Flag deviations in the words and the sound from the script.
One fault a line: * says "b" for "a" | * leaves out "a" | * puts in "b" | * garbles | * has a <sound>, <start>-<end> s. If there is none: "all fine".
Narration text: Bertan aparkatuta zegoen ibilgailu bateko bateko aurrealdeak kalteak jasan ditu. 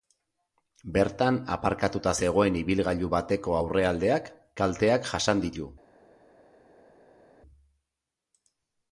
* leaves out "bateko"